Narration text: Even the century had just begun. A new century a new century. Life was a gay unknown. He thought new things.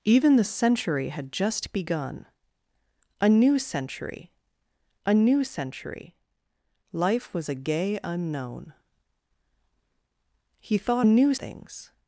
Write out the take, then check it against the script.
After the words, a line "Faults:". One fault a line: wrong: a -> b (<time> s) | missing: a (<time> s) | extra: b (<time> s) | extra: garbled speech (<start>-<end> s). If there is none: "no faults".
Even the century had just begun. A new century a new century. Life was a gay unknown. He thought new things.
Faults:
no faults